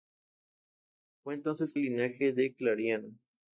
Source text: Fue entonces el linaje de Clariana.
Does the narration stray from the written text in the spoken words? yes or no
no